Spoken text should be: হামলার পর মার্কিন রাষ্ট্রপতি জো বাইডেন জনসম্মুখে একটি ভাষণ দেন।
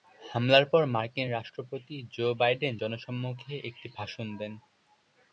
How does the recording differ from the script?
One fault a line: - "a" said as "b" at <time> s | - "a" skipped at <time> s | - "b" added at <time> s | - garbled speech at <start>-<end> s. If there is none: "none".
none